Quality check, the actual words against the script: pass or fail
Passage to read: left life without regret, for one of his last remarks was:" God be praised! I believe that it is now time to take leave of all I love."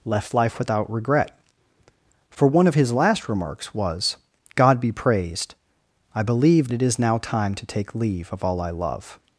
fail